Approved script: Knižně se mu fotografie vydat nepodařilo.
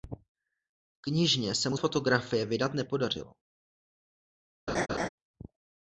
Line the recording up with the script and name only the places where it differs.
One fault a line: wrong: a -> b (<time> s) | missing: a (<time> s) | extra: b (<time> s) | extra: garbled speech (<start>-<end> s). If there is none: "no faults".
no faults